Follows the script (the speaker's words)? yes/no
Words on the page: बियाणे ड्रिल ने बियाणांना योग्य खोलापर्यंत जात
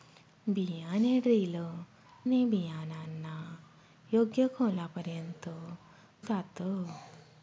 yes